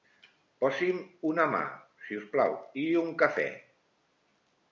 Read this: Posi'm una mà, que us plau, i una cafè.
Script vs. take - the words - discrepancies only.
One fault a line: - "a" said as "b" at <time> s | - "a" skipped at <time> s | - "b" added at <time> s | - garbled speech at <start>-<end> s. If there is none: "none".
- "que" said as "si" at 2.1 s
- "una" said as "un" at 3.0 s